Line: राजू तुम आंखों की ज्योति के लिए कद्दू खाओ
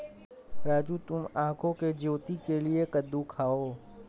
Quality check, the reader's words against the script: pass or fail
pass